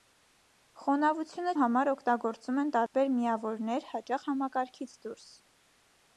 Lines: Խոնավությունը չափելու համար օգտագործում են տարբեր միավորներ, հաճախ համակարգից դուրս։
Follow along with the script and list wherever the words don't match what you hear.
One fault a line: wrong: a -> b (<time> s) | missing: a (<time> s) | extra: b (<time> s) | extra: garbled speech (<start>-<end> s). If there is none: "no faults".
missing: չափելու (1.5 s)